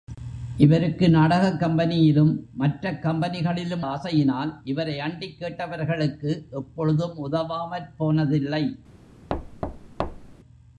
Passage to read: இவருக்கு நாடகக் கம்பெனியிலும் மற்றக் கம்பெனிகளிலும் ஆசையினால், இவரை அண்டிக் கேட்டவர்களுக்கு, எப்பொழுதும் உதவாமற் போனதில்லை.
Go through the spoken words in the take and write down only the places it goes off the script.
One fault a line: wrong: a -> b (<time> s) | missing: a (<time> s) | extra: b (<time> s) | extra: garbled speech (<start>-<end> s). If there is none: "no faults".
no faults